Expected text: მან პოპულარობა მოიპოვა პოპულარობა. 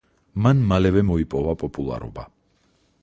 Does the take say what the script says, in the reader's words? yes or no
no